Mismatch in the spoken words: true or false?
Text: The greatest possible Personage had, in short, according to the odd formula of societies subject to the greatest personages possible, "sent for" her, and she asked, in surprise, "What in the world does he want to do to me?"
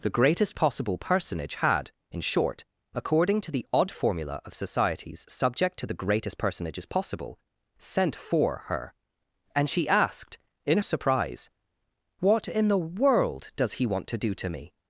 false